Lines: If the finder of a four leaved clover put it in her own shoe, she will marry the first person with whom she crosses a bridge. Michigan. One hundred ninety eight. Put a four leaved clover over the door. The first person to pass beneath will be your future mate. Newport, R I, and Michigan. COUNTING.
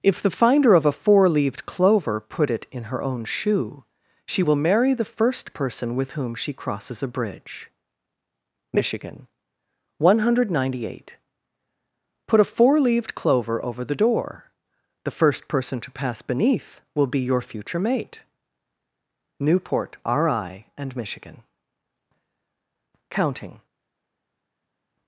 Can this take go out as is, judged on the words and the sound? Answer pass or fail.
pass